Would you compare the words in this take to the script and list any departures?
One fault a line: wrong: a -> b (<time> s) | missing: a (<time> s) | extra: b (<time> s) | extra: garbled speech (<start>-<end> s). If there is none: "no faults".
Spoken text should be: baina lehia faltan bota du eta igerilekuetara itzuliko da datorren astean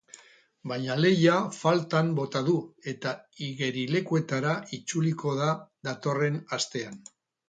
no faults